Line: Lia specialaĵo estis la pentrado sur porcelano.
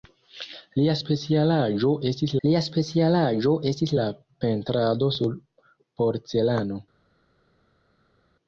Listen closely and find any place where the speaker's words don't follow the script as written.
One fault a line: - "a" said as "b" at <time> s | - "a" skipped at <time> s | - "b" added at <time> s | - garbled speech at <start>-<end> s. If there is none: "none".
- "lia specialaĵo estis" added at 2.4 s